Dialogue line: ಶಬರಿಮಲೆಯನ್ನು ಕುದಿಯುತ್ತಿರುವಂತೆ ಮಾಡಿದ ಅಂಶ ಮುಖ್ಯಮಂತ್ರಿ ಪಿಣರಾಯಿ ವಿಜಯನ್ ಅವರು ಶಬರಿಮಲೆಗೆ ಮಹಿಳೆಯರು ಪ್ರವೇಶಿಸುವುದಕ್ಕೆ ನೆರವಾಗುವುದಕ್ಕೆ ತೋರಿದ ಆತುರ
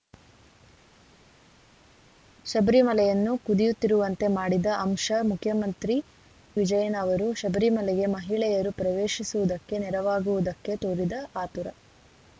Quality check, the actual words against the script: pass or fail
fail